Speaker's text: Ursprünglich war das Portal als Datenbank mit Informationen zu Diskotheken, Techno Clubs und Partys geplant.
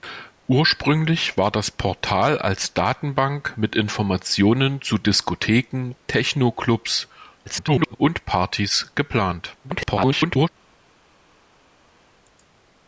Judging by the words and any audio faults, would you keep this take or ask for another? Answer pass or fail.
fail